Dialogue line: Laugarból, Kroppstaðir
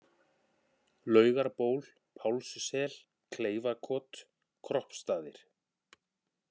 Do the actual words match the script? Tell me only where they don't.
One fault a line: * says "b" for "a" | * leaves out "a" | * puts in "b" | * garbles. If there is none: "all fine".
* puts in "Pálssel Kleifakot"